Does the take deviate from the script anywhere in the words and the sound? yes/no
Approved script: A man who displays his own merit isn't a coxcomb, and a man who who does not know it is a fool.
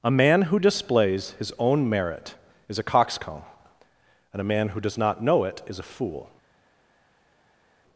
yes